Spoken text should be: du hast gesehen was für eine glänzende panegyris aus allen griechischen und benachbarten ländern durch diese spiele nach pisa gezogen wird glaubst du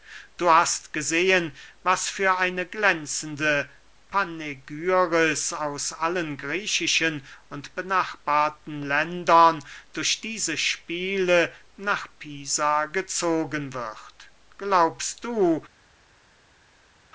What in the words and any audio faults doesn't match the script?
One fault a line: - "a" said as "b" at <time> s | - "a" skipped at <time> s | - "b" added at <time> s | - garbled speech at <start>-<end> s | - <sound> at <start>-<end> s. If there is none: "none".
none